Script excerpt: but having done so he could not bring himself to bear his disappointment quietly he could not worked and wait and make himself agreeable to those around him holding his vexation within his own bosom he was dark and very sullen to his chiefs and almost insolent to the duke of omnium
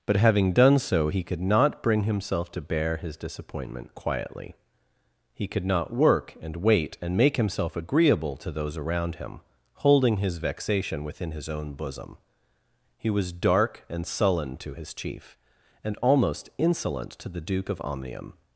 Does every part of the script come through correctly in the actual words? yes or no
no